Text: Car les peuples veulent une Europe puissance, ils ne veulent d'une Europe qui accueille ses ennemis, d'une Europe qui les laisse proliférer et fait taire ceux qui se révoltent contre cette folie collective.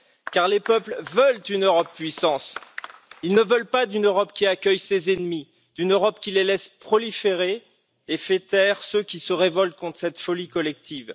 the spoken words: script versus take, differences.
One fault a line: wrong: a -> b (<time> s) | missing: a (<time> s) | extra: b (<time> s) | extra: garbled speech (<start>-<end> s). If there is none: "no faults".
extra: pas (3.7 s)